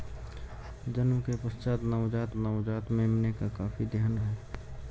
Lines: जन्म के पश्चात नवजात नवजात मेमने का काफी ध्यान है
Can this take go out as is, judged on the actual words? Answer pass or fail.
pass